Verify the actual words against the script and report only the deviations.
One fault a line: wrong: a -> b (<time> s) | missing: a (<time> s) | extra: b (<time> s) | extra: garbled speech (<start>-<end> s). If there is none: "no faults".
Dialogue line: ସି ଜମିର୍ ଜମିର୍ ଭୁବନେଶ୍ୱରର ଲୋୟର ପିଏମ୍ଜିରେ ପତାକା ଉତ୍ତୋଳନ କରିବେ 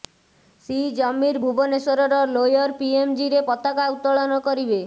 missing: ଜମିର୍ (1.4 s)